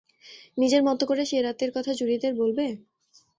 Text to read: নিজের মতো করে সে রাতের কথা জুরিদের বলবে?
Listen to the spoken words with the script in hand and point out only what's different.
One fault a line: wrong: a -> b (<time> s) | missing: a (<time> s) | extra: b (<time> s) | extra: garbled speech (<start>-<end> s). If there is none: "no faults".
no faults